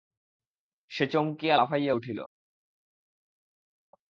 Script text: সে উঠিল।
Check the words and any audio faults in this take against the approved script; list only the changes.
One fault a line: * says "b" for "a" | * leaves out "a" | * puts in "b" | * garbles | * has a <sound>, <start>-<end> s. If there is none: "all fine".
* puts in "চমকিয়া লাফাইয়া"